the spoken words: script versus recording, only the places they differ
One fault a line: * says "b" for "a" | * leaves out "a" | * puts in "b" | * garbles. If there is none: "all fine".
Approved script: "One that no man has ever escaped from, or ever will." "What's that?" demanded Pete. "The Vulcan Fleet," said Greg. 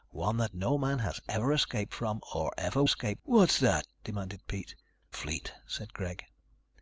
* says "escaped" for "will"
* leaves out "The Vulcan"